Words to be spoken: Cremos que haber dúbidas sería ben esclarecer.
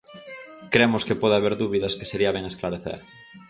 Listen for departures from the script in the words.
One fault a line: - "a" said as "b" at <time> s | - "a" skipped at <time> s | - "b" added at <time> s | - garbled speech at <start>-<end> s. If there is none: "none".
- "pode" added at 1.2 s
- "que" added at 2.0 s